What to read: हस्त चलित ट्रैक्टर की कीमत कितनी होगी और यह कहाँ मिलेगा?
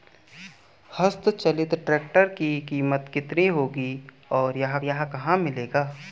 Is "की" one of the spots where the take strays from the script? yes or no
no